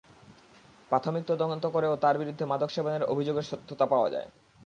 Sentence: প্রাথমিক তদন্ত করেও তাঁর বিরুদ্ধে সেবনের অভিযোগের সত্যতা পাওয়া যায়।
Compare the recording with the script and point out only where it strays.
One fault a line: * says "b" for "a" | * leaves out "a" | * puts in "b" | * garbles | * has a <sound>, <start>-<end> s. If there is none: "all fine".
* puts in "মাদক"